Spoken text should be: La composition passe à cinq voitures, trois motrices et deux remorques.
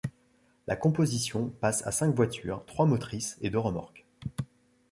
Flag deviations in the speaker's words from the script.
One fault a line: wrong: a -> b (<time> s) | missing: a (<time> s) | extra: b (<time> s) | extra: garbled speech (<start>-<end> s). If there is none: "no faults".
no faults